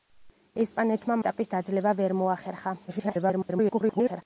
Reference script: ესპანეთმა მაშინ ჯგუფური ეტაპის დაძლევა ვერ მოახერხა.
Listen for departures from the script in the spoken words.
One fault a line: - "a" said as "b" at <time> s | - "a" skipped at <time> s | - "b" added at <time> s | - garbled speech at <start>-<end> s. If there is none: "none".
- "მაშინ ჯგუფური" skipped at 1.2 s
- garbled speech at 2.9-4.2 s